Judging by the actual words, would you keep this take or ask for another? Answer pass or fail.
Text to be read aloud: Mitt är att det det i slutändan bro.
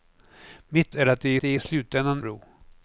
pass